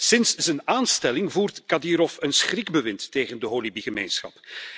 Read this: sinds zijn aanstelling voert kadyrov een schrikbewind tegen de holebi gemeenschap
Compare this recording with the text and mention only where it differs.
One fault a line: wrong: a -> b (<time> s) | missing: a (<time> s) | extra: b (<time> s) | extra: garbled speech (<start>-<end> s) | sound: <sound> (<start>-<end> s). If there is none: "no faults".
no faults